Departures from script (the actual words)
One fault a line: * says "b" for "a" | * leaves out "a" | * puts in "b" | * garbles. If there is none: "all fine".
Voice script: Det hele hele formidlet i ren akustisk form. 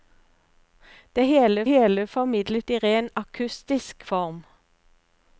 all fine